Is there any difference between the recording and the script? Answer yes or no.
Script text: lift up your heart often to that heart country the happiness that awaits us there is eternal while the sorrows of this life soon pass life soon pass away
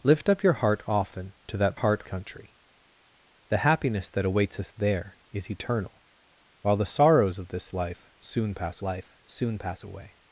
no